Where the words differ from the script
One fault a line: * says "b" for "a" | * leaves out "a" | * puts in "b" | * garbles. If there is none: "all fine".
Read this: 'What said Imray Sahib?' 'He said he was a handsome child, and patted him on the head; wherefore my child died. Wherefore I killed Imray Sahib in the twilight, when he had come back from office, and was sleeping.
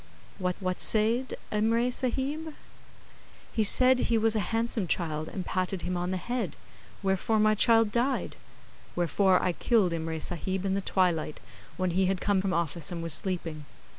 * puts in "what"
* leaves out "back"